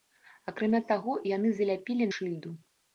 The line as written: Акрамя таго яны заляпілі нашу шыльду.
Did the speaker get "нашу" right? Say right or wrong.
wrong